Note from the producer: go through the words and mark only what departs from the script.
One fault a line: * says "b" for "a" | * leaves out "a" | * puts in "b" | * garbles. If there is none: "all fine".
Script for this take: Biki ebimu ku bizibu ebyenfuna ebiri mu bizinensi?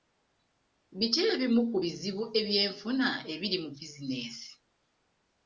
all fine